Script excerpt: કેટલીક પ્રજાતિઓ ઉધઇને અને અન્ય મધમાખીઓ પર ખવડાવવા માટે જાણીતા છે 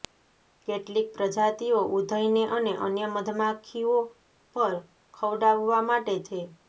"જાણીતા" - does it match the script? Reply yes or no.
no